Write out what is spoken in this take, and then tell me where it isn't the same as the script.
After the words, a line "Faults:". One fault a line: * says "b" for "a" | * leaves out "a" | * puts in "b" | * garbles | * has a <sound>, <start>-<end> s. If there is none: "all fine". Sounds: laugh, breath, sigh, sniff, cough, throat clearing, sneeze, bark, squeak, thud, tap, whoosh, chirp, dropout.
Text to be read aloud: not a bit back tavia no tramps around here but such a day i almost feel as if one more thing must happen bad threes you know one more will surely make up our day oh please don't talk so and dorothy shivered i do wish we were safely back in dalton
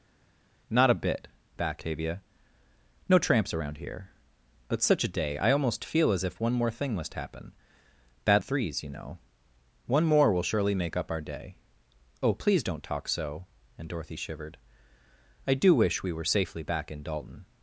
not a bit back tavia no tramps around here but such a day i almost feel as if one more thing must happen bad threes you know one more will surely make up our day oh please don't talk so and dorothy shivered i do wish we were safely back in dalton
Faults:
all fine